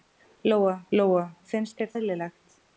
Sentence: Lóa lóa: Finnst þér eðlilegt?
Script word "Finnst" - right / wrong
right